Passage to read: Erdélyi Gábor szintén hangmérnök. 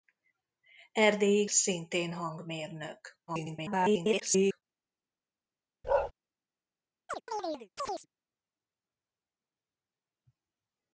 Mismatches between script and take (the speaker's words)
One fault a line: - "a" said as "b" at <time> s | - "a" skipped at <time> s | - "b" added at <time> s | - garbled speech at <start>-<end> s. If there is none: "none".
- "Gábor" skipped at 1.4 s
- garbled speech at 3.3-4.6 s